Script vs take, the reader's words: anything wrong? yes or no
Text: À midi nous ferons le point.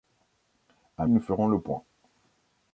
yes